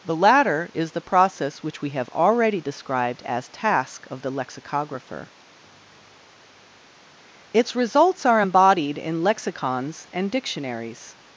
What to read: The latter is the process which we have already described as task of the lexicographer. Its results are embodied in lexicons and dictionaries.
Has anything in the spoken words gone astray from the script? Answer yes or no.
no